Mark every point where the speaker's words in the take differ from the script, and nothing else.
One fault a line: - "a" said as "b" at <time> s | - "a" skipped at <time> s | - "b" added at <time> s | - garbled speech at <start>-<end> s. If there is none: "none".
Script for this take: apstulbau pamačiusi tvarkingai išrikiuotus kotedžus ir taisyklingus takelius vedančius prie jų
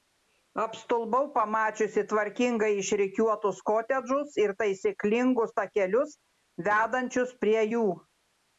none